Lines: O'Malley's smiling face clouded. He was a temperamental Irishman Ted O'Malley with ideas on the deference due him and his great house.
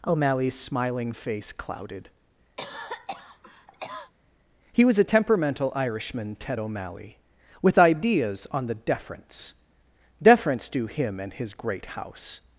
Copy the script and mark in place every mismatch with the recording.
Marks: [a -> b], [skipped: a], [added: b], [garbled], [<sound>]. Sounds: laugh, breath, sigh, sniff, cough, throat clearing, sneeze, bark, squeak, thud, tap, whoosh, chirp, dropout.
O'Malley's smiling face clouded. [cough] He was a temperamental Irishman Ted O'Malley with ideas on the deference [added: deference] due him and his great house.